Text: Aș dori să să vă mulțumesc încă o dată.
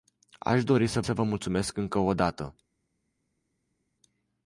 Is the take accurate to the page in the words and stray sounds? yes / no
yes